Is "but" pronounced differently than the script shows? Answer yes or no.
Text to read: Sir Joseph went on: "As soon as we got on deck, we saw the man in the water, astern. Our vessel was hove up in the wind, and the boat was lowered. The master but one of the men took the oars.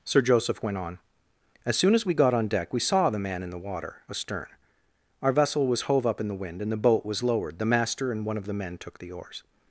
yes